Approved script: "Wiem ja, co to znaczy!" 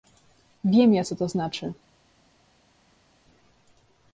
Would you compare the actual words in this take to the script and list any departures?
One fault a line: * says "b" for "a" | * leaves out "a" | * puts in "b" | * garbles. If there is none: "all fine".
all fine